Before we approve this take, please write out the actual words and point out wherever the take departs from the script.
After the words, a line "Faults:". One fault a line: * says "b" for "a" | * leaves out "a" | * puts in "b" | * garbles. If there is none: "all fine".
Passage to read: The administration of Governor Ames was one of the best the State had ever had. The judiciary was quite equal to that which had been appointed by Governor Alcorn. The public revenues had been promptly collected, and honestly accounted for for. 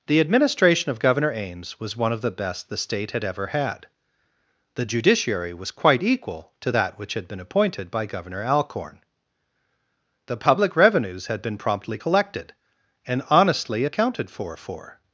The administration of Governor Ames was one of the best the State had ever had. The judiciary was quite equal to that which had been appointed by Governor Alcorn. The public revenues had been promptly collected, and honestly accounted for for.
Faults:
all fine